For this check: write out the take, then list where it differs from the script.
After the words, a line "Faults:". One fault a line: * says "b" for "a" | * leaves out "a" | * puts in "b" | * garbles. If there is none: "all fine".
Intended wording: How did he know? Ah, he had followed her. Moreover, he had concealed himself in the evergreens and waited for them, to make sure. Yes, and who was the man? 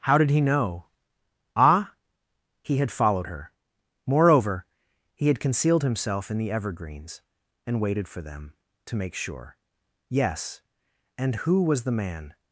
How did he know? Ah, he had followed her. Moreover, he had concealed himself in the evergreens and waited for them, to make sure. Yes, and who was the man?
Faults:
all fine